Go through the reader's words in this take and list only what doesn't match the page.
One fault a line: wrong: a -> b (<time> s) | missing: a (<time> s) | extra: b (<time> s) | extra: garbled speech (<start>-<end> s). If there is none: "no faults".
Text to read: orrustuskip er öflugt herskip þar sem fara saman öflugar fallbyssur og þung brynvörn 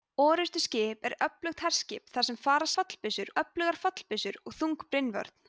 wrong: saman -> fallbyssur (2.8 s)